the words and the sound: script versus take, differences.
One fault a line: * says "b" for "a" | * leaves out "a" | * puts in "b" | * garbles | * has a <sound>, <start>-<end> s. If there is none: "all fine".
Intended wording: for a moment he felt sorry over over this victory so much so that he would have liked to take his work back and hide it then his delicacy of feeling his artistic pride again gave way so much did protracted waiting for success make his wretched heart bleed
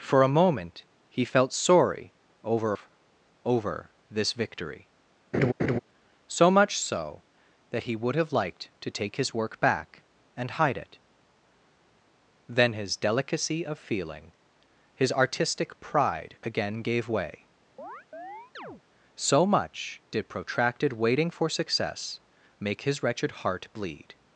* has a laugh, 5.3-5.8 s
* has a chirp, 17.8-18.8 s